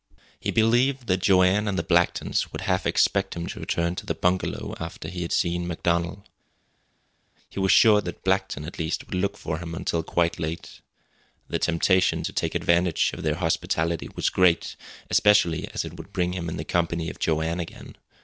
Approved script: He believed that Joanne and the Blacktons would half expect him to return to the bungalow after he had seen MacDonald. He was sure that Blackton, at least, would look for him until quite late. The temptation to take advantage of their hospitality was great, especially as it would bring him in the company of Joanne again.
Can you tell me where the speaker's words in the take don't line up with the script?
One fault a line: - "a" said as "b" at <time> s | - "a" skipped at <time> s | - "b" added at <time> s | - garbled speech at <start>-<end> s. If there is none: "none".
none